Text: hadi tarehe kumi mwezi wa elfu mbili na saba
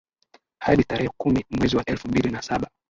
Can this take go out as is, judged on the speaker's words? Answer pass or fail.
pass